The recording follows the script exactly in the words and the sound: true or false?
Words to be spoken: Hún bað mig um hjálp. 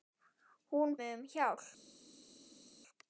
false